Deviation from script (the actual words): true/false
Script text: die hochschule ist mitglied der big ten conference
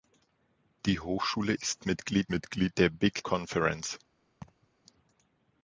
true